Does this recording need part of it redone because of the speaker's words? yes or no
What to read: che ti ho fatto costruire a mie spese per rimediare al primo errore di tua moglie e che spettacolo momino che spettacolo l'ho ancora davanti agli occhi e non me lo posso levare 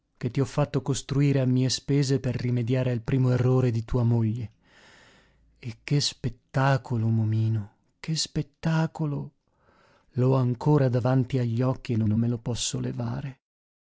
yes